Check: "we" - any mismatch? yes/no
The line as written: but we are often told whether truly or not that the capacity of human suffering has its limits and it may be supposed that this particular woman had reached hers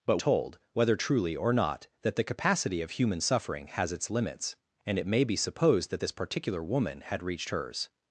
yes